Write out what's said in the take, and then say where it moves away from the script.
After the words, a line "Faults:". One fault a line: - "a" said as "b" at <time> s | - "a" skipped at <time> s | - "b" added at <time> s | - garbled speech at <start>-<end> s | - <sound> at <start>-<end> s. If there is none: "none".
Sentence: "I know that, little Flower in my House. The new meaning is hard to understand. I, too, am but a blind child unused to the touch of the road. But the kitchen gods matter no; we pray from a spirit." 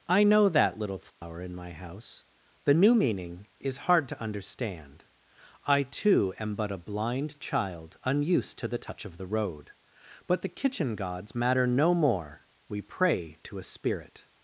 "I know that, little Flower in my House. The new meaning is hard to understand. I, too, am but a blind child unused to the touch of the road. But the kitchen gods matter no more; we pray to a spirit."
Faults:
- dropout at 1.1-1.2 s
- "more" added at 11.9 s
- "from" said as "to" at 13.4 s